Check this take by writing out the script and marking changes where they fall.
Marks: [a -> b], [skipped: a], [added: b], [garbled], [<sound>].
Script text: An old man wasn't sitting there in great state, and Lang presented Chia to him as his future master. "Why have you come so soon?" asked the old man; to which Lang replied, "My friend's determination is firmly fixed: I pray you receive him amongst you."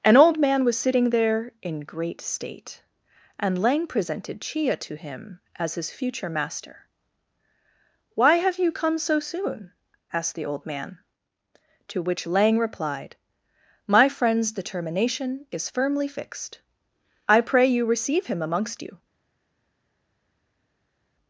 An old man [wasn't -> was] sitting there in great state, and Lang presented Chia to him as his future master. "Why have you come so soon?" asked the old man; to which Lang replied, "My friend's determination is firmly fixed: I pray you receive him amongst you."